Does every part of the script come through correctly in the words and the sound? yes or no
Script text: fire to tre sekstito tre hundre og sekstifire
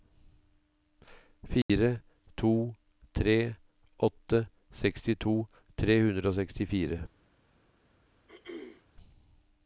no